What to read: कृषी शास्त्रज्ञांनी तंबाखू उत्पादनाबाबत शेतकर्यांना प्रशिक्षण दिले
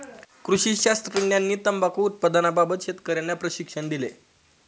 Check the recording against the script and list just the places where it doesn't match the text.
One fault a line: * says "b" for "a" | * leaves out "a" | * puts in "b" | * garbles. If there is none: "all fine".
all fine